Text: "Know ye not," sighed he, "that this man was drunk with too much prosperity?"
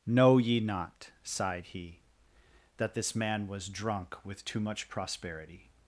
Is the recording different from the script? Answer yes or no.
no